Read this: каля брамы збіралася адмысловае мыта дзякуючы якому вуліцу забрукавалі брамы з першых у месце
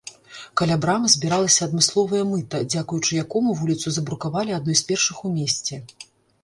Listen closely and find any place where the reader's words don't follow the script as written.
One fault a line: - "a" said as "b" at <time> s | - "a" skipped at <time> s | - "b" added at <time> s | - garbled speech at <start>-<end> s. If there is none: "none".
- "брамы" said as "адной" at 4.6 s